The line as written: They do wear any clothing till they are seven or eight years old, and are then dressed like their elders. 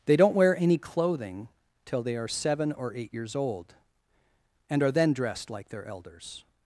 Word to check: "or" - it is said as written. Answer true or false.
true